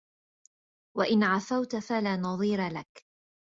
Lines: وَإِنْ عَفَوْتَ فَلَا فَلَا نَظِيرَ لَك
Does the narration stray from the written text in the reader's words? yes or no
yes